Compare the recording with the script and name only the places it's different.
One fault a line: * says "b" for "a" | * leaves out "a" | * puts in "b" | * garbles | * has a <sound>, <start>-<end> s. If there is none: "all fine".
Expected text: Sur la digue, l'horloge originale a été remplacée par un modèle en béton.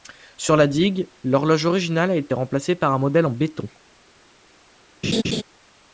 * has a laugh, 5.0-5.4 s